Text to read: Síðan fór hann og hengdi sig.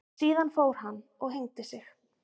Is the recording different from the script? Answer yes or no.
no